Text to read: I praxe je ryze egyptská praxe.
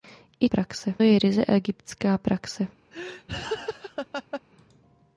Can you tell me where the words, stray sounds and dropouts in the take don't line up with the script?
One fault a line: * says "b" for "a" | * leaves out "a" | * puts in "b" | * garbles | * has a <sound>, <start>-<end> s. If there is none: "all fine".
* has a laugh, 2.9-4.4 s